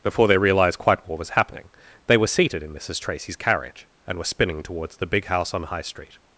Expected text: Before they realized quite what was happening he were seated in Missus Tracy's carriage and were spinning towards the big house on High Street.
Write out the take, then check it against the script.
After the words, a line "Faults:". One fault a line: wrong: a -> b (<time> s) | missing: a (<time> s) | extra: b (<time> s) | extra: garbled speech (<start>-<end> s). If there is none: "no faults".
Before they realized quite what was happening they were seated in Missus Tracy's carriage and were spinning towards the big house on High Street.
Faults:
wrong: he -> they (2.1 s)